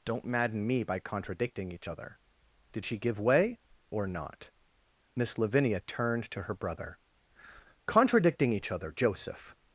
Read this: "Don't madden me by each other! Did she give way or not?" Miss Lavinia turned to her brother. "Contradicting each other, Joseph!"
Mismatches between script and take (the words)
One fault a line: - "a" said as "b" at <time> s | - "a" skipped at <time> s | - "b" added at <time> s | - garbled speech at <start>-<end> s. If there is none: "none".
- "contradicting" added at 1.0 s